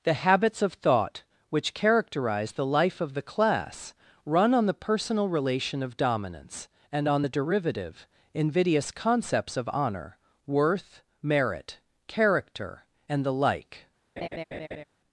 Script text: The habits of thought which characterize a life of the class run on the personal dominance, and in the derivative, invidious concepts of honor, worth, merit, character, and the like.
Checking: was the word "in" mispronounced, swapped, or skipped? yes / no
yes